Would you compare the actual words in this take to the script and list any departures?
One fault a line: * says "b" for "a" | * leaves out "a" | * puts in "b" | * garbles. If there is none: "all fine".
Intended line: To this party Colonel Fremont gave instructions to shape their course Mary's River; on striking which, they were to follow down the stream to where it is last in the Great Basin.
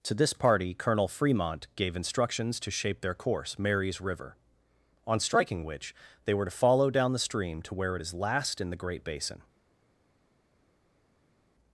all fine